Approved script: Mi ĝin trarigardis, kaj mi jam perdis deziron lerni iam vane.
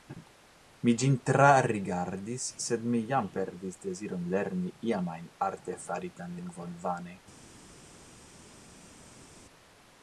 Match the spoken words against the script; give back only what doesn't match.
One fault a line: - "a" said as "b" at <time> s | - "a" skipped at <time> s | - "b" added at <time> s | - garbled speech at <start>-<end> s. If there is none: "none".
- "kaj" said as "sed" at 2.6 s
- "ajn artefaritan lingvon" added at 5.2 s